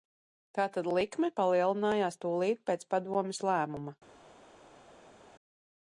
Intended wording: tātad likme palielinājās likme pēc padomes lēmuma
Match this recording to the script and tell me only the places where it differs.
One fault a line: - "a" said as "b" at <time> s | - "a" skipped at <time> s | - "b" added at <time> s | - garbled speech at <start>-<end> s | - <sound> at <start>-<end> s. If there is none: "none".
- "likme" said as "tūlīt" at 2.2 s